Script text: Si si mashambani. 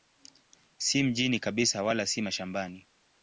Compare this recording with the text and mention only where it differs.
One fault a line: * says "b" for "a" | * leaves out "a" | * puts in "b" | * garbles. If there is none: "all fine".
* puts in "mjini kabisa wala"